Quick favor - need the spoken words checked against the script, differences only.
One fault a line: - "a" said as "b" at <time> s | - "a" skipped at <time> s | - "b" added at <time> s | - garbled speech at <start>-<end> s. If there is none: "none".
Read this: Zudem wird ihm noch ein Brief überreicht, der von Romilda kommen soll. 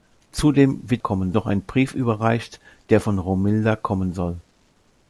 - "ihm" said as "kommen" at 1.0 s